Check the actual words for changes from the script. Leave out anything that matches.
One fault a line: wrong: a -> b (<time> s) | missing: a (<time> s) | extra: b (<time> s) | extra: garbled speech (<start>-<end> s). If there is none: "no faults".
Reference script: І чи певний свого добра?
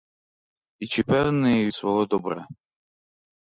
no faults